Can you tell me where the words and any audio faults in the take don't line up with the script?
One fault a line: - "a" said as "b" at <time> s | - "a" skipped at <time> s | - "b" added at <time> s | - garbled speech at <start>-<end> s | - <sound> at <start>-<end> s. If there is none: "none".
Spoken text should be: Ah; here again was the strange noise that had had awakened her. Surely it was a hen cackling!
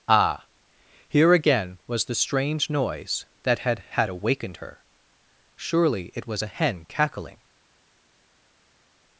none